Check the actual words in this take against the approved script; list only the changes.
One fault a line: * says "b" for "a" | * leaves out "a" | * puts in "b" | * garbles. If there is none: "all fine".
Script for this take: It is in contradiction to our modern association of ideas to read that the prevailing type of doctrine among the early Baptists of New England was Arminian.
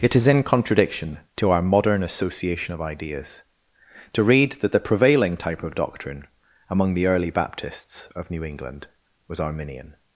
all fine